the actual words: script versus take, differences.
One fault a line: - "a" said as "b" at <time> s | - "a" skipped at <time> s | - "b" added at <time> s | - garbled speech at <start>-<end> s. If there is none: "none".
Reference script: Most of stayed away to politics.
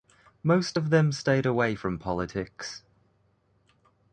- "them" added at 0.9 s
- "to" said as "from" at 1.7 s